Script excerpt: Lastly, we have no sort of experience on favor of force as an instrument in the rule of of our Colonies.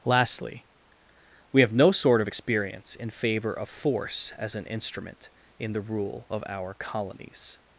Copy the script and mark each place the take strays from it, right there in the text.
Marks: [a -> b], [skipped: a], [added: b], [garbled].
Lastly, we have no sort of experience [on -> in] favor of force as an instrument in the rule of [skipped: of] our Colonies.